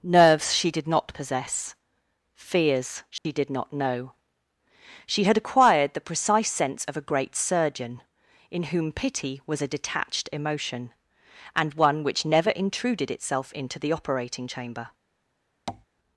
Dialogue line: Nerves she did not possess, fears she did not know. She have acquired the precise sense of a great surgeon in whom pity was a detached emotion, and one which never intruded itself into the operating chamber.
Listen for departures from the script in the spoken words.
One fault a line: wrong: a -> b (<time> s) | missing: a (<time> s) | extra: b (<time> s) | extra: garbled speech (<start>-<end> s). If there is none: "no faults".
wrong: have -> had (5.2 s)